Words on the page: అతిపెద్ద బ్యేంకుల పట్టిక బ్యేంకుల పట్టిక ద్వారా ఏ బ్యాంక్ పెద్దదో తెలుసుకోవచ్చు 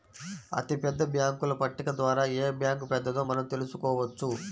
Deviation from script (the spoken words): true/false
true